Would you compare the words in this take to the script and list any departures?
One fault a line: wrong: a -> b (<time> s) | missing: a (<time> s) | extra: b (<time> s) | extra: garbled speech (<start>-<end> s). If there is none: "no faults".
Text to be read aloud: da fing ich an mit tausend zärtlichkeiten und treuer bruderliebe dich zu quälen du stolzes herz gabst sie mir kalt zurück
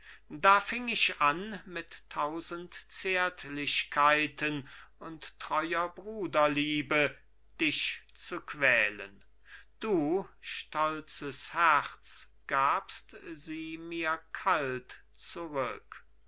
no faults